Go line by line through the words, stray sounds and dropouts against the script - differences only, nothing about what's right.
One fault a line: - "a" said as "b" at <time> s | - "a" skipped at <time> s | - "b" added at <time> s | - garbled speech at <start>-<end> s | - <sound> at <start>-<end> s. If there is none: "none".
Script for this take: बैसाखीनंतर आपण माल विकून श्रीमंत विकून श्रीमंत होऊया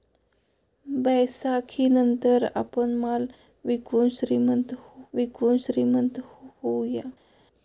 none